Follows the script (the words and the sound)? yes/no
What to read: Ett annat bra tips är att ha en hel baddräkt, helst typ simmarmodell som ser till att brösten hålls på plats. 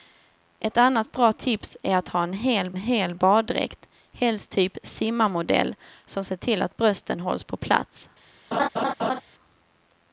no